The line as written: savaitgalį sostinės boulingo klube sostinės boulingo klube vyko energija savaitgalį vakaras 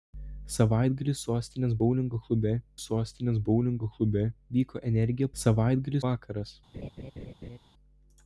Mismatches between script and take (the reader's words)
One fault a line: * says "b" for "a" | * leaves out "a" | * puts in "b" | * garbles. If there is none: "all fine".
all fine